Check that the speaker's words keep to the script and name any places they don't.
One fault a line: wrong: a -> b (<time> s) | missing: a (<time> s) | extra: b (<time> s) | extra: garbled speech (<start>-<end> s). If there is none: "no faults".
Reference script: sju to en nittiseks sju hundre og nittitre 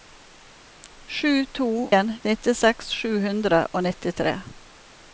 no faults